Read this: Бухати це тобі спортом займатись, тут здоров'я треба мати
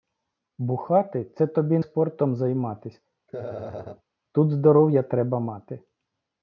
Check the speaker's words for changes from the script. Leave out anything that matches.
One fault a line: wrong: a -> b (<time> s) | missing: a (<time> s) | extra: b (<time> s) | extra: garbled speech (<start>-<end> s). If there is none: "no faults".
no faults